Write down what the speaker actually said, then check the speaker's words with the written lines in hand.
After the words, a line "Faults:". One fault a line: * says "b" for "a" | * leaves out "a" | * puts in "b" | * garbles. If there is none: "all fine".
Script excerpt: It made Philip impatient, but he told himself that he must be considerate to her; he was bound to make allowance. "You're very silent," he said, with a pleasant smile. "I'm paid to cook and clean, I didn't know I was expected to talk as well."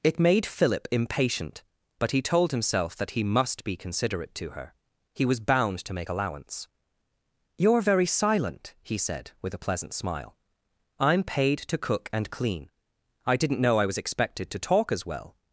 It made Philip impatient, but he told himself that he must be considerate to her; he was bound to make allowance. "You're very silent," he said, with a pleasant smile. "I'm paid to cook and clean, I didn't know I was expected to talk as well."
Faults:
all fine